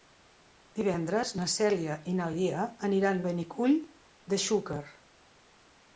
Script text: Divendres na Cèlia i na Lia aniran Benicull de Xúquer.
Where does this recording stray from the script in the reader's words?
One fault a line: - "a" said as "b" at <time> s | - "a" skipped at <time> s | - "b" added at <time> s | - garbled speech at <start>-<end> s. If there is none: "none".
none